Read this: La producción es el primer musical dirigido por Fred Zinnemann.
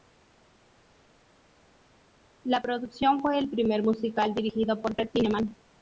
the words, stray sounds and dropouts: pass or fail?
fail